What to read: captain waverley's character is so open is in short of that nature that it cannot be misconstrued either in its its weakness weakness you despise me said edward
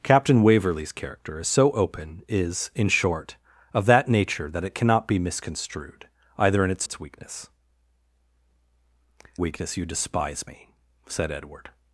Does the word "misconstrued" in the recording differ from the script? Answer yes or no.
no